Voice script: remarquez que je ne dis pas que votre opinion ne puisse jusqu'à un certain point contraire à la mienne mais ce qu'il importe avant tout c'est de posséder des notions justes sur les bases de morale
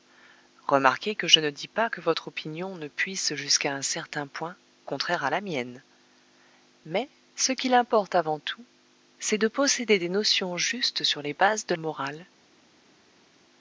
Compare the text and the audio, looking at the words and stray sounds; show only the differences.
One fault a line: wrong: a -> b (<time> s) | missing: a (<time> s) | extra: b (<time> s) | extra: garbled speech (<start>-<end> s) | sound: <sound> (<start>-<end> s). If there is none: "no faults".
no faults